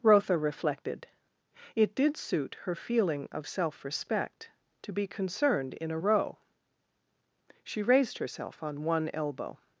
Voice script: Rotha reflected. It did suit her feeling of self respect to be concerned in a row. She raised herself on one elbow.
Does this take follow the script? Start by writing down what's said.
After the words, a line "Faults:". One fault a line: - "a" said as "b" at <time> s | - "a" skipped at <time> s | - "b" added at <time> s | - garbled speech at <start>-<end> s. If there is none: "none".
Rotha reflected. It did suit her feeling of self respect to be concerned in a row. She raised herself on one elbow.
Faults:
none